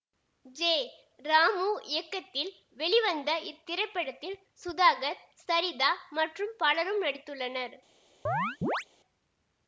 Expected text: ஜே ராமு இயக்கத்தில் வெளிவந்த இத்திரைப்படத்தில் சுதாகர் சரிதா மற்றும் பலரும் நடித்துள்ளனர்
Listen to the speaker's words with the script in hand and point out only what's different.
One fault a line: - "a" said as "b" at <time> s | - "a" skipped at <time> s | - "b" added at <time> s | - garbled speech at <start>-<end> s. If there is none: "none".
none